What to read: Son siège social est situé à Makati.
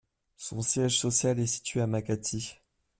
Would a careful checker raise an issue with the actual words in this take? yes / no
no